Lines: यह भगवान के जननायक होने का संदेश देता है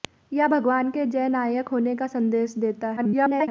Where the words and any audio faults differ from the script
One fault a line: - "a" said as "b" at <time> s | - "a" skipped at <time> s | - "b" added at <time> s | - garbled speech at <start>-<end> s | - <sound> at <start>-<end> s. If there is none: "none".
- garbled speech at 3.0-3.5 s